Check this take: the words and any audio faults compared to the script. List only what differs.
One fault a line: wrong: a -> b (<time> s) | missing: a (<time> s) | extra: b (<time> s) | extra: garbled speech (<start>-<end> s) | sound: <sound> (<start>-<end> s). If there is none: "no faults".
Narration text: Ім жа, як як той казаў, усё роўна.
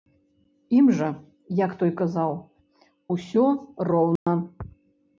missing: як (1.7 s)
sound: dropout (4.2-4.3 s)